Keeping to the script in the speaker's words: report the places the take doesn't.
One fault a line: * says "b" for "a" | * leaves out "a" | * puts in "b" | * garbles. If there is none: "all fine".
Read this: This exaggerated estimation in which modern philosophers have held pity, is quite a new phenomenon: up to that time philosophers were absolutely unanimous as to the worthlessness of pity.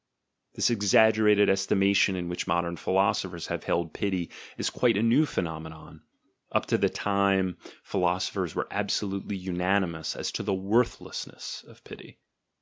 all fine